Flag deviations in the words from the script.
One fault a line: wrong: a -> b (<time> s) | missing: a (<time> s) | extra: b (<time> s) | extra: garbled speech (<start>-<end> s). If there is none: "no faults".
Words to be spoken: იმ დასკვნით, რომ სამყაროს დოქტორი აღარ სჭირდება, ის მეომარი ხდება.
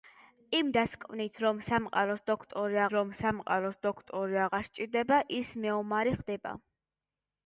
extra: რომ სამყაროს დოქტორი (2.9 s)